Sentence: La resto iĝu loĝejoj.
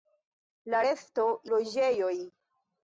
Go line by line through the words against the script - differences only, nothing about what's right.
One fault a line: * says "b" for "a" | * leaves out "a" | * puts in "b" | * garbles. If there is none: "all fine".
* leaves out "iĝu"